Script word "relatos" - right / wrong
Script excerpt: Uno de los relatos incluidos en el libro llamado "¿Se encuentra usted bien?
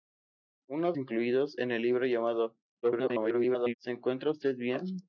wrong